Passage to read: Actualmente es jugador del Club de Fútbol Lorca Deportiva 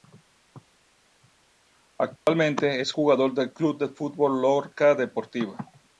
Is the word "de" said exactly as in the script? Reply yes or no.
yes